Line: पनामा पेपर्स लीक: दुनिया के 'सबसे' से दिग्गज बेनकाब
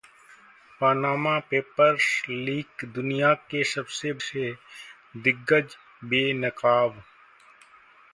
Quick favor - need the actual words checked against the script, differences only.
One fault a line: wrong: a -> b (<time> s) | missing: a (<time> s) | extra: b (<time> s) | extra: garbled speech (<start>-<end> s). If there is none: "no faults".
no faults